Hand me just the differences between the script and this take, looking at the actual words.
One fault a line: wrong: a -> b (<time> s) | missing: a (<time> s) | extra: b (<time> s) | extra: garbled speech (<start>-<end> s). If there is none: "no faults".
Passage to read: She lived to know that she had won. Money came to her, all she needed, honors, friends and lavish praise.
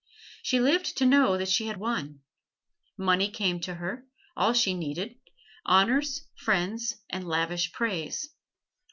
no faults